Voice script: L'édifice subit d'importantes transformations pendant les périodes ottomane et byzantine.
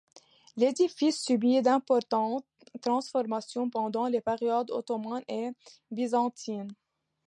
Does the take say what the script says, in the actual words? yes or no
yes